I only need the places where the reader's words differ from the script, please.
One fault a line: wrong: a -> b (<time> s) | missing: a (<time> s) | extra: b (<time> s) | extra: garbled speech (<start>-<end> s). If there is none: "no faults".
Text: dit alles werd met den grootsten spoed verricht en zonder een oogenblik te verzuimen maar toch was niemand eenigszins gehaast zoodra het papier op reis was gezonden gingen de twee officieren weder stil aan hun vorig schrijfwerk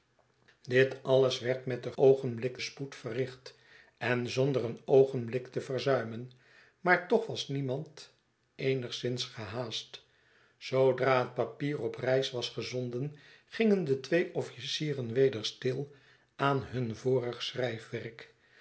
wrong: grootsten -> oogenblik (1.9 s)